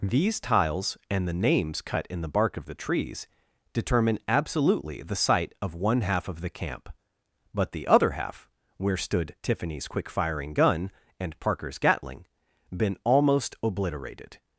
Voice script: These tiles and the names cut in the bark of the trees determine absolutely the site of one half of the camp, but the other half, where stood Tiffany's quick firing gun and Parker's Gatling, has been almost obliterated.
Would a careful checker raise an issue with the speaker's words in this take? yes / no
yes